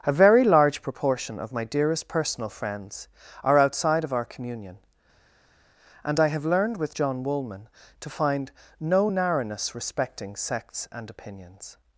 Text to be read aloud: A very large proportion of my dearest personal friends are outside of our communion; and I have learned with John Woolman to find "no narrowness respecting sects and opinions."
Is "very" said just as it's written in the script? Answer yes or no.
yes